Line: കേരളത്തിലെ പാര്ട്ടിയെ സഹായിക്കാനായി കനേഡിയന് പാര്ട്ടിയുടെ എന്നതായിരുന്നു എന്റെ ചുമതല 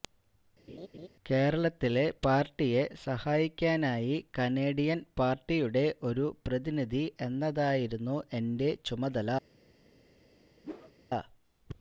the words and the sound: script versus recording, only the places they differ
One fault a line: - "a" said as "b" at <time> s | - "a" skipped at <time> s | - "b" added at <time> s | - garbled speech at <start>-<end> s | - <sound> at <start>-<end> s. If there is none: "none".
- laugh at 0.7-1.1 s
- "ഒരു പ്രതിനിധി" added at 6.1 s
- whoosh at 10.6-10.9 s